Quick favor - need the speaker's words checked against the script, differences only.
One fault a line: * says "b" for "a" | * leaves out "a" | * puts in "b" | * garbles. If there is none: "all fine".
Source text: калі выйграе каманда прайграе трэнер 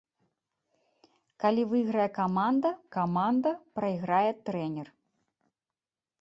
* puts in "каманда"